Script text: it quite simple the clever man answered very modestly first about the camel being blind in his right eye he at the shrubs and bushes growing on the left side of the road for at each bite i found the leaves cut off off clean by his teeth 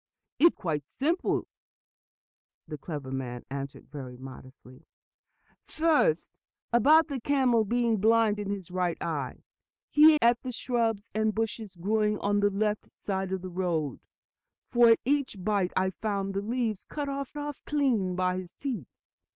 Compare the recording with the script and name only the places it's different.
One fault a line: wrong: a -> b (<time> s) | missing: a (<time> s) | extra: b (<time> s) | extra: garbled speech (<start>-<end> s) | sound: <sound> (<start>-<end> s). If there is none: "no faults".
no faults